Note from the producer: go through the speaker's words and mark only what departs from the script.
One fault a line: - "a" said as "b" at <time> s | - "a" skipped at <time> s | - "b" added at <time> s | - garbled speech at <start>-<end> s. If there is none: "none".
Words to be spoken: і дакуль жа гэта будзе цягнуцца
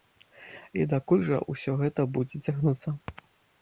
- "ўсё" added at 1.5 s